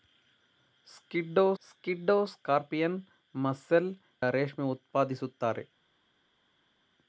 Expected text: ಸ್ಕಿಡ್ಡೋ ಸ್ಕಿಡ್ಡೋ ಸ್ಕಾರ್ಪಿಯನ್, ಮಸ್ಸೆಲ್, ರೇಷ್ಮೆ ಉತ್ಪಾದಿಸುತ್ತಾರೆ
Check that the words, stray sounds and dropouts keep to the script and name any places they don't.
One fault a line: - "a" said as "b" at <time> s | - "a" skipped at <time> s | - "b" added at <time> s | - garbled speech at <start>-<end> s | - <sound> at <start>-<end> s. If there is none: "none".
none